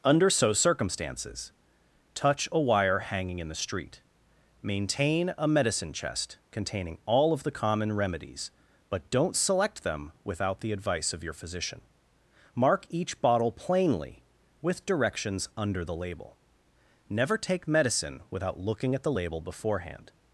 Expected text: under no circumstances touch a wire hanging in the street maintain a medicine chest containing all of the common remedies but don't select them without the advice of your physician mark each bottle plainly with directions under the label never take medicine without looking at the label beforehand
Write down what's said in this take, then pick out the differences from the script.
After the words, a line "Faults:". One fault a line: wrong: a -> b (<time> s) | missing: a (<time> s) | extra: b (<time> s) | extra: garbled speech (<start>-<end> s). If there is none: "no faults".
under so circumstances touch a wire hanging in the street maintain a medicine chest containing all of the common remedies but don't select them without the advice of your physician mark each bottle plainly with directions under the label never take medicine without looking at the label beforehand
Faults:
wrong: no -> so (0.3 s)